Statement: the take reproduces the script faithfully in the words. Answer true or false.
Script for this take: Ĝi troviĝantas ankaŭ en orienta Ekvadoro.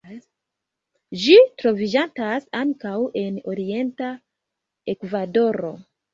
true